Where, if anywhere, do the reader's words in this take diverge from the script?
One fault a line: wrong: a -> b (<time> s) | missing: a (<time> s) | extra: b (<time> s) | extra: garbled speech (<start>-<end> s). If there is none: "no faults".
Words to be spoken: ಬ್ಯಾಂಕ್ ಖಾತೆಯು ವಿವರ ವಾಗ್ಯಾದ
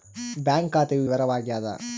no faults